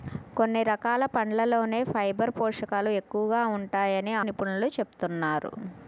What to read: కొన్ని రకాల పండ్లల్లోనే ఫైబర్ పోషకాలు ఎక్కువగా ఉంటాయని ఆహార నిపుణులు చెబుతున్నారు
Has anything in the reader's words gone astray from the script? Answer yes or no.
yes